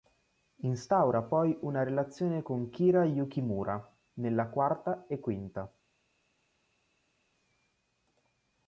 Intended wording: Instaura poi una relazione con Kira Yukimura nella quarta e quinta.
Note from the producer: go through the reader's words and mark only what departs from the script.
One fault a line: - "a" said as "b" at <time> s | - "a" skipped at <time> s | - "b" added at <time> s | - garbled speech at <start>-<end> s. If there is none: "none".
none